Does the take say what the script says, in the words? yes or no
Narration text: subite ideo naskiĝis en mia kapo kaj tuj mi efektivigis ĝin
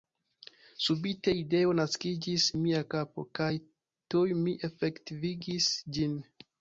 no